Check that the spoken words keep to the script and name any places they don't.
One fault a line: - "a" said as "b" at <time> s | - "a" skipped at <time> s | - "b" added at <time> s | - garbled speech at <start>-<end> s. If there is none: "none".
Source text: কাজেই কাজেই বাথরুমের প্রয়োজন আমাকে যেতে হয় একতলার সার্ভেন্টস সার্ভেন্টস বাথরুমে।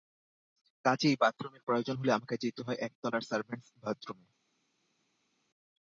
- "কাজেই" skipped at 1.1 s
- "হলে" added at 2.0 s
- "সার্ভেন্টস" skipped at 3.7 s